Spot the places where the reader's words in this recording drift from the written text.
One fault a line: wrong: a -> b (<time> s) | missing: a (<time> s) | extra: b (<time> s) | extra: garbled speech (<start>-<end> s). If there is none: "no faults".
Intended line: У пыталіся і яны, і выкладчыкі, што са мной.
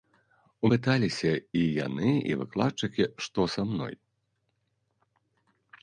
no faults